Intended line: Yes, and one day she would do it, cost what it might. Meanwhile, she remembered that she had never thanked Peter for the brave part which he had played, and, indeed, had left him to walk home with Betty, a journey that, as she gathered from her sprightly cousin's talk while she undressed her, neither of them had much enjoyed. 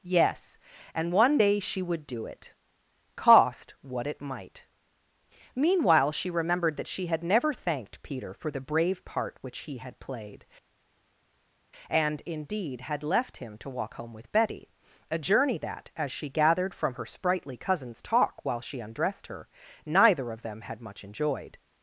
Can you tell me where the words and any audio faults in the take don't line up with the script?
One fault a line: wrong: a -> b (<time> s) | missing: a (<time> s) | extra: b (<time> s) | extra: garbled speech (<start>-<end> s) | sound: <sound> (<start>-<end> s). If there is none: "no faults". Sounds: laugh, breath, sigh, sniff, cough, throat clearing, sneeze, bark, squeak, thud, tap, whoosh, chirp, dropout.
no faults